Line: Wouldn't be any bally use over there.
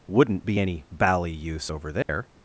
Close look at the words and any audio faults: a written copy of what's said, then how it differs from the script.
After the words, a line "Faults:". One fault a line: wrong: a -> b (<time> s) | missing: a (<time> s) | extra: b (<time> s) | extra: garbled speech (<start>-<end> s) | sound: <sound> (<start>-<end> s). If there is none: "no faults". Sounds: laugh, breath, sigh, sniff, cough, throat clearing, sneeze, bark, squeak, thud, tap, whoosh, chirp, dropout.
Wouldn't be any bally use over there.
Faults:
sound: dropout (2.0-2.1 s)